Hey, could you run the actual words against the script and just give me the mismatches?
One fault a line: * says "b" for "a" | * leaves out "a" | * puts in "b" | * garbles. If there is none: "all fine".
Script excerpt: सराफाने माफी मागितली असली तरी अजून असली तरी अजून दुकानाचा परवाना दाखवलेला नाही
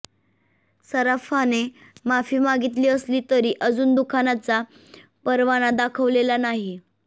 * leaves out "असली तरी अजून"